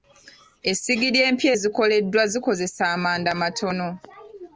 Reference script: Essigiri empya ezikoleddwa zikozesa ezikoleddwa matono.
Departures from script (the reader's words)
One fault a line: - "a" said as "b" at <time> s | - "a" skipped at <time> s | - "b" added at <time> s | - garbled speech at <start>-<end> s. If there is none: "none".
- "ezikoleddwa" said as "amanda" at 2.9 s